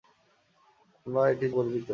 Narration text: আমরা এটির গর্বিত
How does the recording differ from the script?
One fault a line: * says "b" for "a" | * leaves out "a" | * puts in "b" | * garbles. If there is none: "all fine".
all fine